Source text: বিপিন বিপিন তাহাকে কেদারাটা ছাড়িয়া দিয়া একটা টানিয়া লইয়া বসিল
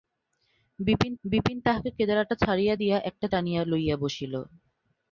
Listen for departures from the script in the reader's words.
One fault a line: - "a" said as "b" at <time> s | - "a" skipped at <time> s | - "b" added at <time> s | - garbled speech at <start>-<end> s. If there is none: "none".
none